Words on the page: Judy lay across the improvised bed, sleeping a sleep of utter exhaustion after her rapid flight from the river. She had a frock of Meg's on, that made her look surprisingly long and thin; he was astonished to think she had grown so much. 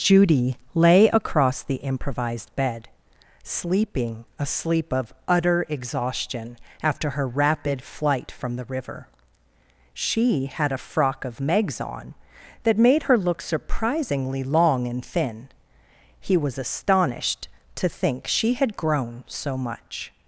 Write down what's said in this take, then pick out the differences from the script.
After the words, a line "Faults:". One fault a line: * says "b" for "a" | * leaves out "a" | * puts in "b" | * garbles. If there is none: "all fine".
Judy lay across the improvised bed, sleeping a sleep of utter exhaustion after her rapid flight from the river. She had a frock of Meg's on, that made her look surprisingly long and thin; he was astonished to think she had grown so much.
Faults:
all fine